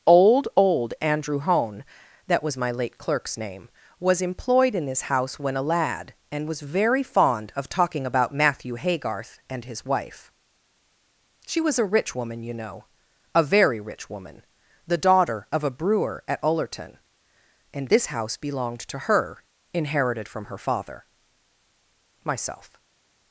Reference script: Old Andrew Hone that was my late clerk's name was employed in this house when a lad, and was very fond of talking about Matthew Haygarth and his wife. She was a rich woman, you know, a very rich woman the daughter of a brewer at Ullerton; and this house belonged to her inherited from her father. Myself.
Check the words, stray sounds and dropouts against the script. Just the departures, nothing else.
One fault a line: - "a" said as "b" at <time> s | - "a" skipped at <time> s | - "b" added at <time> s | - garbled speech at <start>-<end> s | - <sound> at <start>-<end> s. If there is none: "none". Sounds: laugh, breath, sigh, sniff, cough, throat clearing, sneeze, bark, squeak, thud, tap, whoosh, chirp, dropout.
- "old" added at 0.6 s